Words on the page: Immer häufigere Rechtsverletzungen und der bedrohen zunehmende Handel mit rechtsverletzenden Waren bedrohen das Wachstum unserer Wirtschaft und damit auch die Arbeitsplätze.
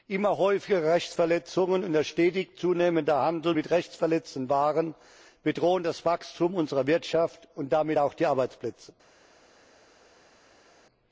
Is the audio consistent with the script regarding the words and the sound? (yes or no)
no